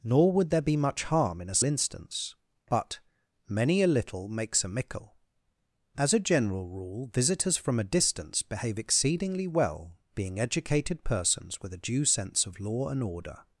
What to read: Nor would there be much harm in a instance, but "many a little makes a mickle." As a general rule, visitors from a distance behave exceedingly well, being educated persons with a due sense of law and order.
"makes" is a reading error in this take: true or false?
false